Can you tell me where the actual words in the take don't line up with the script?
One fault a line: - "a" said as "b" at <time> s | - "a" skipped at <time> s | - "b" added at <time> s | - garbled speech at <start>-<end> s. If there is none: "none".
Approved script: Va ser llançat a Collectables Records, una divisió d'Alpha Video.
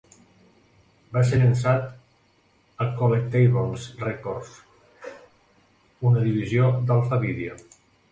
none